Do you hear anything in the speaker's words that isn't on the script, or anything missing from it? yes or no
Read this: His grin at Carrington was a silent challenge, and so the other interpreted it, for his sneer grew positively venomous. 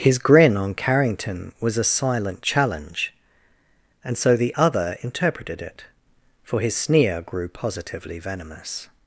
yes